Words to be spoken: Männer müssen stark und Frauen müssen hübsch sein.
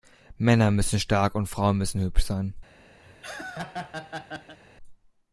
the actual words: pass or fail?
pass